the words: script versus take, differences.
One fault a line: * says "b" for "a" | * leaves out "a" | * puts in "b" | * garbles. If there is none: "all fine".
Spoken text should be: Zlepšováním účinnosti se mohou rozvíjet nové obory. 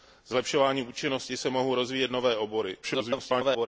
* garbles